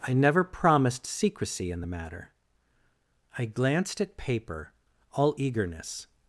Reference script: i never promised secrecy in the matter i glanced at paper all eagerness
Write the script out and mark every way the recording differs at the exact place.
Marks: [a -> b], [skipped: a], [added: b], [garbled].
i never promised secrecy in the matter i glanced at paper all eagerness